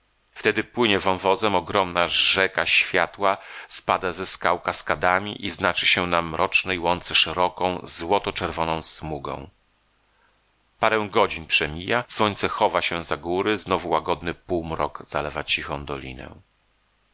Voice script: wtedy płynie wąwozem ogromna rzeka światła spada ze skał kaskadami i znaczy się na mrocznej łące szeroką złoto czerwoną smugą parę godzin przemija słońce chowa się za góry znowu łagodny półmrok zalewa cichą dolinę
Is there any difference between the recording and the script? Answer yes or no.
no